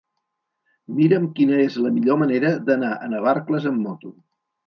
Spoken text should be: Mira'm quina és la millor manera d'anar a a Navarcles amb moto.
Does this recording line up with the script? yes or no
no